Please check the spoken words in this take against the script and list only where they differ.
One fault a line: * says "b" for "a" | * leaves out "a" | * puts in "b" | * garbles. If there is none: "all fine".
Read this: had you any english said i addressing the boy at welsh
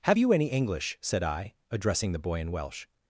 * says "have" for "had"
* says "in" for "at"